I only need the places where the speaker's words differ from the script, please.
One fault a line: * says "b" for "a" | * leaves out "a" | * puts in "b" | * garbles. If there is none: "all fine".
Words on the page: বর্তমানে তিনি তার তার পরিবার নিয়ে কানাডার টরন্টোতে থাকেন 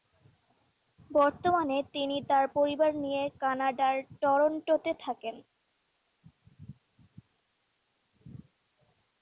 * leaves out "তার"